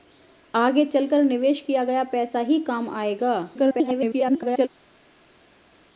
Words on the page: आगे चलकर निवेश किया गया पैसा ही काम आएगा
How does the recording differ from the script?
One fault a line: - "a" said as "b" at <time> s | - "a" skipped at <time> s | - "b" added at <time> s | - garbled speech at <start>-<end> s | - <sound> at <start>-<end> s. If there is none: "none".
- garbled speech at 3.5-4.7 s